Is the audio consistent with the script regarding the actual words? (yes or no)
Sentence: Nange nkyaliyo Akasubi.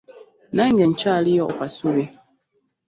yes